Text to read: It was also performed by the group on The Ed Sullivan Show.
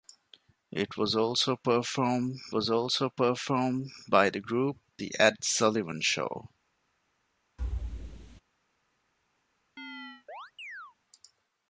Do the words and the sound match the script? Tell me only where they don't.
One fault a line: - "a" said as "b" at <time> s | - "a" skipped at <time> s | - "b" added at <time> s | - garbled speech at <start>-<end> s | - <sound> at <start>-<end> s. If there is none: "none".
- "was also performed" added at 2.5 s
- "on" skipped at 4.8 s
- thud at 7.6-8.4 s
- chirp at 9.8-11.0 s